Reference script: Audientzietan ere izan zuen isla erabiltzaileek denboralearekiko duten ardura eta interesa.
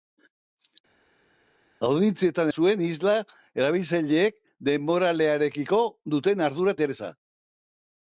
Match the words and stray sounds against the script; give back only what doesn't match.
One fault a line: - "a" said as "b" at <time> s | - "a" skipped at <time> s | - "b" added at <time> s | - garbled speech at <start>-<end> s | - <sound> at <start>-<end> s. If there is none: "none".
- "ere izan" skipped at 2.5 s
- "eta" skipped at 6.8 s